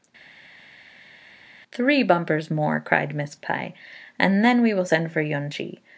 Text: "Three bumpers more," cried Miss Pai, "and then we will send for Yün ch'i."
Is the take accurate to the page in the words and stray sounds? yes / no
yes